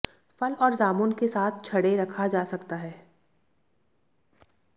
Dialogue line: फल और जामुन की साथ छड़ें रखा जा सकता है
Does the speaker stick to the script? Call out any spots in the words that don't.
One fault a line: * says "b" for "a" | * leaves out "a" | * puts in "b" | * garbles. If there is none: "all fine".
* says "के" for "की"